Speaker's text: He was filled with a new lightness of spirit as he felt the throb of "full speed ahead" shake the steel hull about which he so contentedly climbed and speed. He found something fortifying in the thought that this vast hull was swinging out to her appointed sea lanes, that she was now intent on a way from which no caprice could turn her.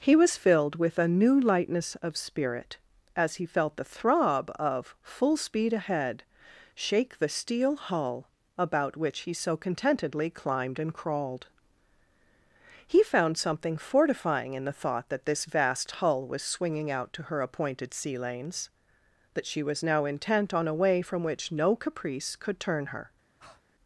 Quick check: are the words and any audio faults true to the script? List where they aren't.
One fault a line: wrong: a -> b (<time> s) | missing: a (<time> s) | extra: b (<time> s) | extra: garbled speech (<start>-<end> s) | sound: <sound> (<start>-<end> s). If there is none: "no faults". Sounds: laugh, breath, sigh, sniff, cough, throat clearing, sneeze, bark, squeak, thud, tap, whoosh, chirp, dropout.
wrong: speed -> crawled (10.9 s)
sound: breath (23.4-23.6 s)